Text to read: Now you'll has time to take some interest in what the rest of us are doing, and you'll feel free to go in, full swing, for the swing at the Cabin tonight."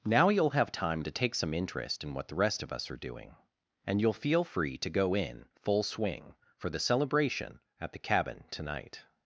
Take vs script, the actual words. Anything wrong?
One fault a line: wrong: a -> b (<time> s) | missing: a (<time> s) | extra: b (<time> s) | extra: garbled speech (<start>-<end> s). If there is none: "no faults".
wrong: has -> have (0.6 s)
wrong: swing -> celebration (6.8 s)